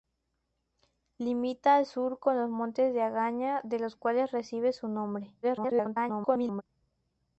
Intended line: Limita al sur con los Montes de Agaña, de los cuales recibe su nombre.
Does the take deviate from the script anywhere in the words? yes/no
yes